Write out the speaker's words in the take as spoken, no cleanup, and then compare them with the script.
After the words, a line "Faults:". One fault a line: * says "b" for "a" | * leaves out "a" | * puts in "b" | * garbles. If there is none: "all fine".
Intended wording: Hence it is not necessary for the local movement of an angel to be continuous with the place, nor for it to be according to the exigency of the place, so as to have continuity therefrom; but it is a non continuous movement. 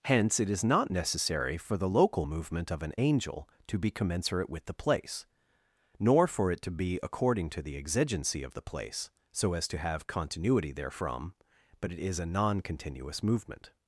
Hence it is not necessary for the local movement of an angel to be commensurate with the place, nor for it to be according to the exigency of the place, so as to have continuity therefrom; but it is a non continuous movement.
Faults:
* says "commensurate" for "continuous"